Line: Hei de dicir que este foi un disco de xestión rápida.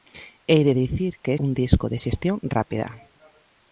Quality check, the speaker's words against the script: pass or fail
fail